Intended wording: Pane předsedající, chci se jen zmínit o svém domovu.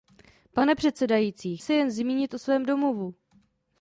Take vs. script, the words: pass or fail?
fail